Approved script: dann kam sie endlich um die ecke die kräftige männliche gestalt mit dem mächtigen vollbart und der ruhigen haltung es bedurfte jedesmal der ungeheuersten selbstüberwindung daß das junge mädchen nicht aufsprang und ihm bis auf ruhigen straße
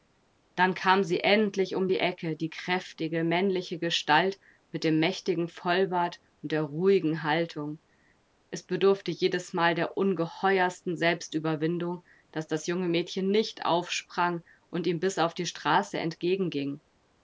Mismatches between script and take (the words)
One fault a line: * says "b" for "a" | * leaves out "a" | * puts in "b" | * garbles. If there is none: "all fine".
* says "die" for "ruhigen"